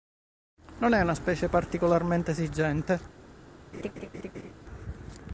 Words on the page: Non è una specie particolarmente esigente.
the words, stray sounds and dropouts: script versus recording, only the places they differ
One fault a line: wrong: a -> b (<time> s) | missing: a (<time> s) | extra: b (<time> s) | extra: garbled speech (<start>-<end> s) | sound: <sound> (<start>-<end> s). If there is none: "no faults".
sound: laugh (3.7-4.5 s)